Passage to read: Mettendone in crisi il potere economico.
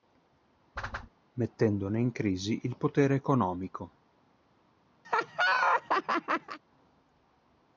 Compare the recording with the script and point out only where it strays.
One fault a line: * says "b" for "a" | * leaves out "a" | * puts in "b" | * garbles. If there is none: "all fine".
all fine